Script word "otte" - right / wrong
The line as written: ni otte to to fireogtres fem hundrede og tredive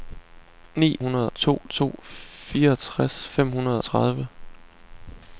wrong